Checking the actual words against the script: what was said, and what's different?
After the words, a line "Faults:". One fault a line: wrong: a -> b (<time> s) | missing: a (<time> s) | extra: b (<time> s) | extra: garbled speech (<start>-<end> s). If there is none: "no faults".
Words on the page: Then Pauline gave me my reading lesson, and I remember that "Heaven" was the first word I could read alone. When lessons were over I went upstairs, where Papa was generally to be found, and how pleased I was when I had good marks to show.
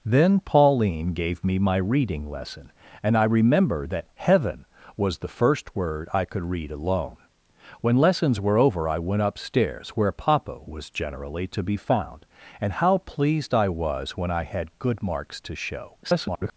Then Pauline gave me my reading lesson, and I remember that "Heaven" was the first word I could read alone. When lessons were over I went upstairs, where Papa was generally to be found, and how pleased I was when I had good marks to show. [garbled]
Faults:
extra: garbled speech (16.0-16.5 s)